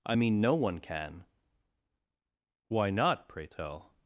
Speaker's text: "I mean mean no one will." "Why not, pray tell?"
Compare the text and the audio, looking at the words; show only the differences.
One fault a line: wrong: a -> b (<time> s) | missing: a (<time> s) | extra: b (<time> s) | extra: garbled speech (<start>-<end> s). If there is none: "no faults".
missing: mean (0.4 s)
wrong: will -> can (0.8 s)